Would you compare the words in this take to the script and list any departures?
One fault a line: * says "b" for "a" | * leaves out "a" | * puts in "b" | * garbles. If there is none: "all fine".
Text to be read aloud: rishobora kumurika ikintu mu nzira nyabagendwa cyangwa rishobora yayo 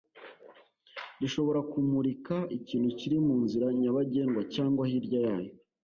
* puts in "kiri"
* says "hirya" for "rishobora"